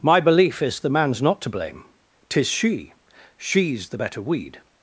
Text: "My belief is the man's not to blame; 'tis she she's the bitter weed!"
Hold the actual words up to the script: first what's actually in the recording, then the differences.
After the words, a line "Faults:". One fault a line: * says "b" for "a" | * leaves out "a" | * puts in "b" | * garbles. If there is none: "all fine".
"My belief is the man's not to blame; 'tis she she's the better weed!"
Faults:
* says "better" for "bitter"